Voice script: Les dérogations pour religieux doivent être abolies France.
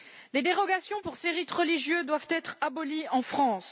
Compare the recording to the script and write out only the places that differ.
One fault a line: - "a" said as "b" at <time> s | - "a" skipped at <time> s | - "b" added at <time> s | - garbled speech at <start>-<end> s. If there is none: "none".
- "ces rites" added at 1.2 s
- "en" added at 3.1 s